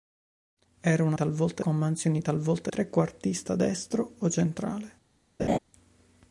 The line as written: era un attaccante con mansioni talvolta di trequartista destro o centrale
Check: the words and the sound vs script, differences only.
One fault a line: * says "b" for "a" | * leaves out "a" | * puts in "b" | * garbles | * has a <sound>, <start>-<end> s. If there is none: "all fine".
* says "talvolta" for "attaccante"
* leaves out "di"
* has a laugh, 5.4-5.6 s